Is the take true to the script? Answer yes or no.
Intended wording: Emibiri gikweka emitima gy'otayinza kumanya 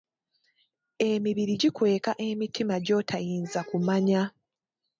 yes